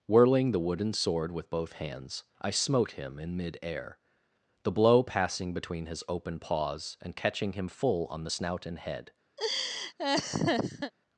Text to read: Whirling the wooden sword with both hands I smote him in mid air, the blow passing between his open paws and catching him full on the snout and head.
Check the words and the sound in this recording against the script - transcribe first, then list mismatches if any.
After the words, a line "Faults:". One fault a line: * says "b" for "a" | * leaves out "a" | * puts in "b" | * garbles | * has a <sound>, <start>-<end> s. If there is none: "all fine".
Whirling the wooden sword with both hands I smote him in mid air, the blow passing between his open paws and catching him full on the snout and head.
Faults:
* has a laugh, 9.4-10.9 s